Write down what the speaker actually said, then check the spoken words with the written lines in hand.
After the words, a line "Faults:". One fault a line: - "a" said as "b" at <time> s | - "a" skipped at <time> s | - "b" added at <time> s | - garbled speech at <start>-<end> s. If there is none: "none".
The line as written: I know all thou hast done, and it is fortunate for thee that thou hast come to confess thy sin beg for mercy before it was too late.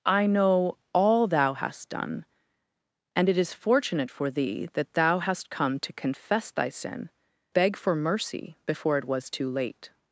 I know all thou hast done, and it is fortunate for thee that thou hast come to confess thy sin beg for mercy before it was too late.
Faults:
none